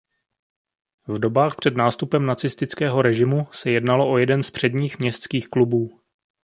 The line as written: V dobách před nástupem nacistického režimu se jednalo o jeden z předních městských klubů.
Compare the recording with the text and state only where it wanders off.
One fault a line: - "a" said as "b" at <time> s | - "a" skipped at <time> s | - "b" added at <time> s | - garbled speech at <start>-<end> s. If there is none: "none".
none